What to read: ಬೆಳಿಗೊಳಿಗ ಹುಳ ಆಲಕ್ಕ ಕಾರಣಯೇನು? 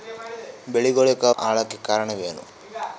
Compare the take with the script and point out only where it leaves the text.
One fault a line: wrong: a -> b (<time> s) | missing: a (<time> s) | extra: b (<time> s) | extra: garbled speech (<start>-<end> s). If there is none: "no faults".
missing: ಹುಳ (1.2 s)